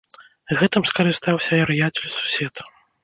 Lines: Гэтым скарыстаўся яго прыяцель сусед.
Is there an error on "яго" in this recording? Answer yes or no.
yes